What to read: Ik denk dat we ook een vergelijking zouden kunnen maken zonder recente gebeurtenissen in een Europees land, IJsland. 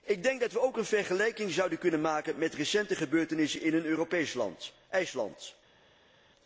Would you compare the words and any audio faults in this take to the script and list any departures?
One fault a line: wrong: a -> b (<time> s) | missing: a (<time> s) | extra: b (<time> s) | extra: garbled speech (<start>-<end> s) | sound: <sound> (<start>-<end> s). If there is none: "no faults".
wrong: zonder -> met (2.4 s)